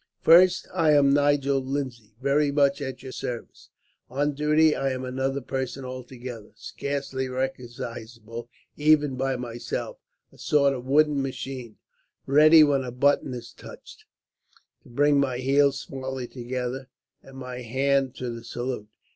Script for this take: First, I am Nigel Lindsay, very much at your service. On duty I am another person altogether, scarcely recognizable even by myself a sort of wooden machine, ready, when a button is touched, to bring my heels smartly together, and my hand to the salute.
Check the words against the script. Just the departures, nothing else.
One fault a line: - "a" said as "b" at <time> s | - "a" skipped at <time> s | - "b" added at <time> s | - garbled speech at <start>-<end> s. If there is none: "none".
none